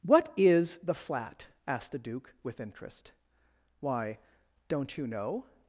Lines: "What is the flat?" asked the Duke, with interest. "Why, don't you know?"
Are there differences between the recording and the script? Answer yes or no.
no